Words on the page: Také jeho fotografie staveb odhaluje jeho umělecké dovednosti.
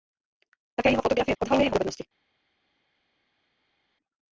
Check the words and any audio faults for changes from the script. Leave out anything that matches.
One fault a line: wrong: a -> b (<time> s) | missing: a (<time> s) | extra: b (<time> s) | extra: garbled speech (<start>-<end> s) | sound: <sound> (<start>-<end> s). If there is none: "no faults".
missing: staveb (1.4 s)
missing: umělecké (1.7 s)